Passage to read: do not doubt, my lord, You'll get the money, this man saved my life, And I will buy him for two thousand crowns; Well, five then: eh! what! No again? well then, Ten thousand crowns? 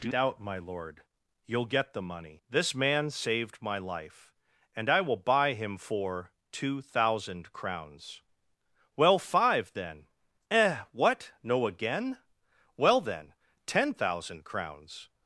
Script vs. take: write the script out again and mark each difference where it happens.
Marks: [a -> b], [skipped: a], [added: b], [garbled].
do [skipped: not] doubt, my lord, You'll get the money, this man saved my life, And I will buy him for two thousand crowns; Well, five then: eh! what! No again? well then, Ten thousand crowns?